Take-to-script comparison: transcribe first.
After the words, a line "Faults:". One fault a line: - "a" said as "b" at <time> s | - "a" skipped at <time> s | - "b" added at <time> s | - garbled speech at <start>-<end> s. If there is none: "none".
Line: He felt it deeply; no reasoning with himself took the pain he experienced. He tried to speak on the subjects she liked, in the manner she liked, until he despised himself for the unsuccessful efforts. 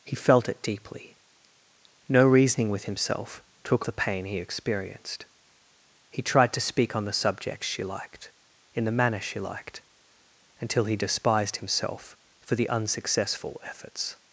He felt it deeply; no reasoning with himself took the pain he experienced. He tried to speak on the subjects she liked, in the manner she liked, until he despised himself for the unsuccessful efforts.
Faults:
none